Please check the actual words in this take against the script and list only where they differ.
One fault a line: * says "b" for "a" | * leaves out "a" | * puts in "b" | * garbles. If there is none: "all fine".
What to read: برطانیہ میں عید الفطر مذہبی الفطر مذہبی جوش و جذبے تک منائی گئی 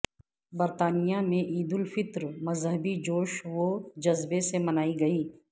* leaves out "الفطر مذہبی"
* says "سے" for "تک"